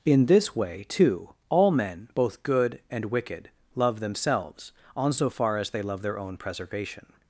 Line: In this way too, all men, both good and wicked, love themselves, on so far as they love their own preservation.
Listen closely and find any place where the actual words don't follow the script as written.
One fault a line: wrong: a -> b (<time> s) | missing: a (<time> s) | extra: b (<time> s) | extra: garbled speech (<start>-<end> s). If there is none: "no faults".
no faults